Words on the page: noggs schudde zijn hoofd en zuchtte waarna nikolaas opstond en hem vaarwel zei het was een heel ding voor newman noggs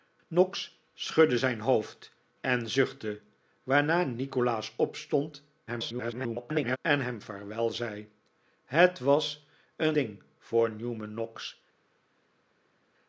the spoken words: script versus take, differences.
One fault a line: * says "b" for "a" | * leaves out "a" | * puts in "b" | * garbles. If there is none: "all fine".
* garbles
* leaves out "heel"